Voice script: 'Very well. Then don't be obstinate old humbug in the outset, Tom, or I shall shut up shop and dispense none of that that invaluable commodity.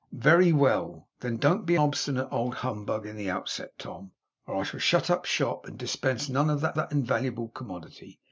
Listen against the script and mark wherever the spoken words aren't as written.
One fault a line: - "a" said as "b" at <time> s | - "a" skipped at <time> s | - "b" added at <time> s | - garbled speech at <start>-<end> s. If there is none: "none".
none